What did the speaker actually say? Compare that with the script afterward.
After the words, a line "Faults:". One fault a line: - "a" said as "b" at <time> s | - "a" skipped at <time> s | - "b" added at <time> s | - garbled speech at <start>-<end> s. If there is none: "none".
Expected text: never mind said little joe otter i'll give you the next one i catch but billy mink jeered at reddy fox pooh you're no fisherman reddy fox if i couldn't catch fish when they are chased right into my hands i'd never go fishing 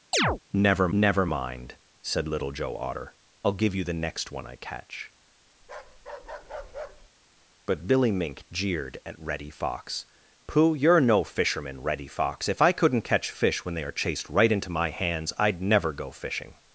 never never mind said little joe otter i'll give you the next one i catch but billy mink jeered at reddy fox pooh you're no fisherman reddy fox if i couldn't catch fish when they are chased right into my hands i'd never go fishing
Faults:
- "never" added at 0.9 s